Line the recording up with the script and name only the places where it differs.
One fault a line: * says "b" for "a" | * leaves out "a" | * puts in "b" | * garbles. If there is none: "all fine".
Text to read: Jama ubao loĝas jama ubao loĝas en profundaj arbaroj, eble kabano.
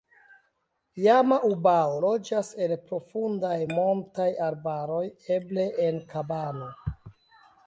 * leaves out "jama ubao loĝas"
* puts in "montaj"
* puts in "en"